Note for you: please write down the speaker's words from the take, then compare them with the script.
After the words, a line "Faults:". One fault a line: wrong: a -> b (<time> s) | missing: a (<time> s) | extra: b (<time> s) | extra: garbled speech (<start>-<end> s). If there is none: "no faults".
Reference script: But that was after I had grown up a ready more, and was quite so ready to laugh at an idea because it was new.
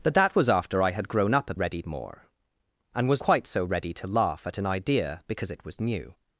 But that was after I had grown up a ready more, and was quite so ready to laugh at an idea because it was new.
Faults:
no faults